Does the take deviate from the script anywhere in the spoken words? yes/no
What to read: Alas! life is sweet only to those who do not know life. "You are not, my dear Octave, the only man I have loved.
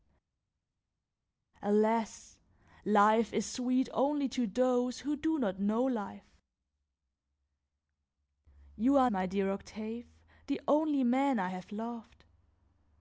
yes